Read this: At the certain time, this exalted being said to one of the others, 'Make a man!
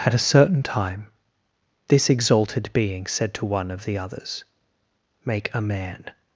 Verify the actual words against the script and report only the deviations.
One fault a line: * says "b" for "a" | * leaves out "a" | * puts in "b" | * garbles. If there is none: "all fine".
* says "a" for "the"